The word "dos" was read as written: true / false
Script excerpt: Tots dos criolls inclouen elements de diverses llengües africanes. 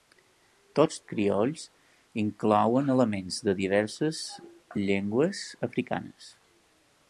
false